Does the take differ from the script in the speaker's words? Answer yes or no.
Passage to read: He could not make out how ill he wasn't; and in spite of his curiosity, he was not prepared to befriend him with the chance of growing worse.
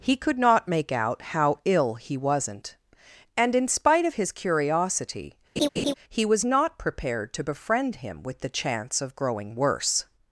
no